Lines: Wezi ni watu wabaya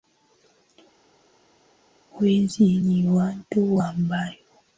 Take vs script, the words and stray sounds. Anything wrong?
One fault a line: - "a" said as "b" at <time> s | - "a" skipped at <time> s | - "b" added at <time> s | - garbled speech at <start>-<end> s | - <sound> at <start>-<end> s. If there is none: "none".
none